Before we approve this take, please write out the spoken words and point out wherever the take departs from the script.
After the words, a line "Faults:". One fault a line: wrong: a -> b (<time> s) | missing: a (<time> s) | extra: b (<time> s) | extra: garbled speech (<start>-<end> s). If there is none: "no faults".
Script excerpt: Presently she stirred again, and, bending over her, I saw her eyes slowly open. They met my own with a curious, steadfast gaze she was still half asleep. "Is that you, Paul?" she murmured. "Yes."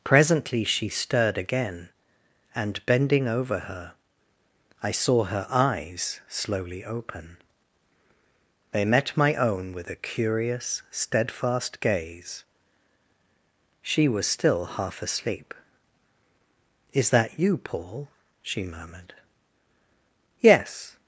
Presently she stirred again, and, bending over her, I saw her eyes slowly open. They met my own with a curious, steadfast gaze she was still half asleep. "Is that you, Paul?" she murmured. "Yes."
Faults:
no faults